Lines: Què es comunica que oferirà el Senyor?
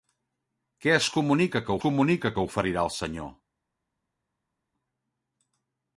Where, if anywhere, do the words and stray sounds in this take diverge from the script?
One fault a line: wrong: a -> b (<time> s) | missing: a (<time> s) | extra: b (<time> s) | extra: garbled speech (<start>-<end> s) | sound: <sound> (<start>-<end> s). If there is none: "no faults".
extra: comunica que (1.9 s)